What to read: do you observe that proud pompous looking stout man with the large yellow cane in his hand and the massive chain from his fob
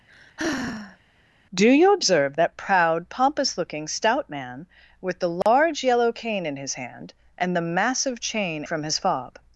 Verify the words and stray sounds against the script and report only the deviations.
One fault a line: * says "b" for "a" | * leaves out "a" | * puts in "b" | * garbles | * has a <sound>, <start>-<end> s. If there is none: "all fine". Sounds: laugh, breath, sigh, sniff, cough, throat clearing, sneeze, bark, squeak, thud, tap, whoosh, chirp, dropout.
* has a sigh, 0.1-1.0 s
* has a dropout, 5.4-5.5 s